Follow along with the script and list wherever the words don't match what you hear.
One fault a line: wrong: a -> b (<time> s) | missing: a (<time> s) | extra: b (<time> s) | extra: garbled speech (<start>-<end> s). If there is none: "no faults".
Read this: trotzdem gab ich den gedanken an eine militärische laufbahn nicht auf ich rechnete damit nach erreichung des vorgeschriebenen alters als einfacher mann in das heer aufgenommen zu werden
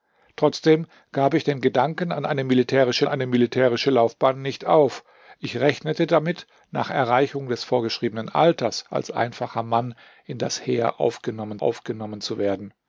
extra: eine militärische (3.1 s)
extra: aufgenommen (11.6 s)